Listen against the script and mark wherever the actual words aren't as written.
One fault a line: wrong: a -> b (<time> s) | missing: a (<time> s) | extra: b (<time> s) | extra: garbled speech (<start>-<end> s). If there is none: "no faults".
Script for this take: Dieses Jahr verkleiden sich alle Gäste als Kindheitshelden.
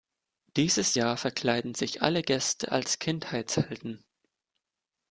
no faults